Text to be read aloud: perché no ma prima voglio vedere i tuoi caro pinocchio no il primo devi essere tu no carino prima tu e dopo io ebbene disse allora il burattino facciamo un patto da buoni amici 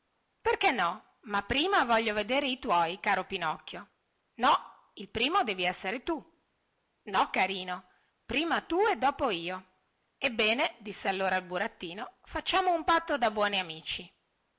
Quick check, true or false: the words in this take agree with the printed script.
true